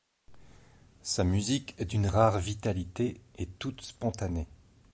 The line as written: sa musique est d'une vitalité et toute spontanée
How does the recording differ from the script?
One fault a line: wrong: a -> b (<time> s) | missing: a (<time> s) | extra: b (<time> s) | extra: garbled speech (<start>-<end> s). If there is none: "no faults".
extra: rare (2.1 s)